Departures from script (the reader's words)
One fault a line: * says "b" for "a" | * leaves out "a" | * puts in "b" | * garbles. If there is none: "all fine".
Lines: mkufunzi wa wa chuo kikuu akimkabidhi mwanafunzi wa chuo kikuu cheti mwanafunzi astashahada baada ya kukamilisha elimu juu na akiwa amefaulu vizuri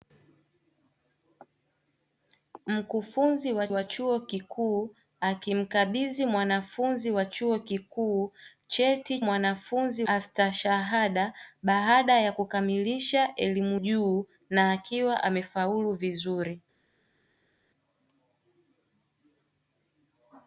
all fine